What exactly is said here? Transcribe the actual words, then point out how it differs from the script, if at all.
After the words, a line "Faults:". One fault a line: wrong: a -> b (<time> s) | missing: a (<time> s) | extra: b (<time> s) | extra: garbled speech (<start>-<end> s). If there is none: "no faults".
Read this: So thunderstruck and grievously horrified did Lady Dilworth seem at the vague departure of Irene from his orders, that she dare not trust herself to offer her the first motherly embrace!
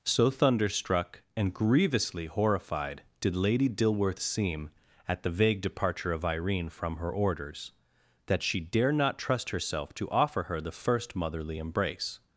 So thunderstruck and grievously horrified did Lady Dilworth seem at the vague departure of Irene from her orders, that she dare not trust herself to offer her the first motherly embrace!
Faults:
wrong: his -> her (7.0 s)